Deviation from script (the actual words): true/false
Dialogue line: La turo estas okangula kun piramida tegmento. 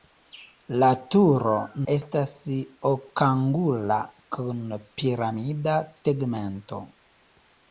false